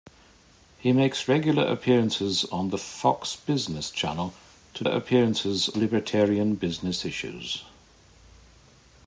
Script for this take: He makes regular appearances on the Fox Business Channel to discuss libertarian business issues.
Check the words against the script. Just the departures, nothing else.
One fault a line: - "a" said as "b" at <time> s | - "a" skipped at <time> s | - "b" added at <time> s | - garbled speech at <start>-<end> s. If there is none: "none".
- "discuss" said as "appearances" at 4.9 s